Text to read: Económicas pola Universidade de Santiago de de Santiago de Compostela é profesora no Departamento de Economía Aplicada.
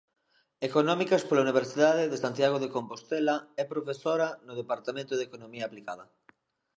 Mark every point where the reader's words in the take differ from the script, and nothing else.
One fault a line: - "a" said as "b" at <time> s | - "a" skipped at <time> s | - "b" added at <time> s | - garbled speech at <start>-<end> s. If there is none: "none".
- "de Santiago de" skipped at 2.7 s